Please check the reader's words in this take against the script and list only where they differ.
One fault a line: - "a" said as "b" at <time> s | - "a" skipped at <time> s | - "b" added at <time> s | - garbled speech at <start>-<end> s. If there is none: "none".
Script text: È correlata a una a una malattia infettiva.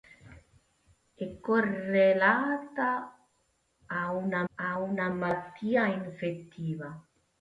none